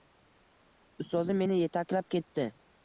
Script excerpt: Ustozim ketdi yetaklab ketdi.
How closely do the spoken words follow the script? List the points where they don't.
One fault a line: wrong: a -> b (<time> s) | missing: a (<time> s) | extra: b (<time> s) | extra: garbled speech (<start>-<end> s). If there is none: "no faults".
wrong: ketdi -> meni (1.4 s)